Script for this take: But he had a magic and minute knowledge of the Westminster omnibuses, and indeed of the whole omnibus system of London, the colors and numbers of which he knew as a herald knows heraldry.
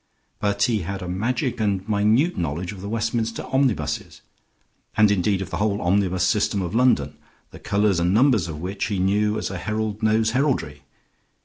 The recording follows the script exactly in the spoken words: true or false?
true